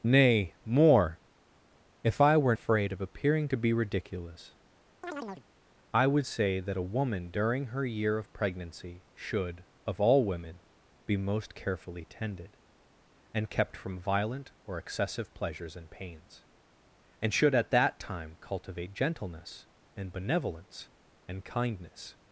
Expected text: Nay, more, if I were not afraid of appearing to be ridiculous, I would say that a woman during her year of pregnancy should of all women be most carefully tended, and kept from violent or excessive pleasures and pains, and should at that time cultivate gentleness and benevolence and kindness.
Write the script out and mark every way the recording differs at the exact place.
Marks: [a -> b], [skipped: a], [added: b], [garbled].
Nay, more, if I were [skipped: not] afraid of appearing to be ridiculous, I would say that a woman during her year of pregnancy should of all women be most carefully tended, and kept from violent or excessive pleasures and pains, and should at that time cultivate gentleness and benevolence and kindness.